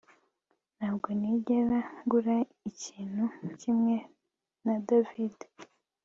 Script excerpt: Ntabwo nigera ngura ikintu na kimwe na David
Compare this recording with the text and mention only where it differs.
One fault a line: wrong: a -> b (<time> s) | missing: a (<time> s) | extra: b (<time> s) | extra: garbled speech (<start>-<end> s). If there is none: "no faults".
missing: na (3.2 s)